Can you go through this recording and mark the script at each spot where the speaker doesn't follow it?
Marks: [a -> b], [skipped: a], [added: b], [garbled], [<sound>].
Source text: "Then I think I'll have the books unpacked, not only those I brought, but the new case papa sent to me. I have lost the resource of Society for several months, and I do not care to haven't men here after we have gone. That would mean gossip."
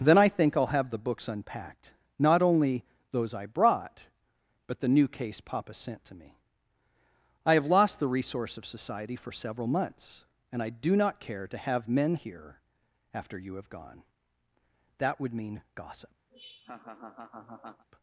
"Then I think I'll have the books unpacked, not only those I brought, but the new case papa sent to me. I have lost the resource of Society for several months, and I do not care to [haven't -> have] men here after [we -> you] have gone. That would mean gossip." [laugh]